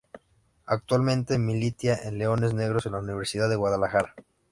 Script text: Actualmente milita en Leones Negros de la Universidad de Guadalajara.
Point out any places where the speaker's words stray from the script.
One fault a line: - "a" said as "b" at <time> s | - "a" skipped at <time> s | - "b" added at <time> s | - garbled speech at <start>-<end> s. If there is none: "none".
none